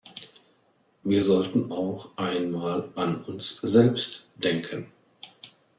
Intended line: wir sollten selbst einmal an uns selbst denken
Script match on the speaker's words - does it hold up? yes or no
no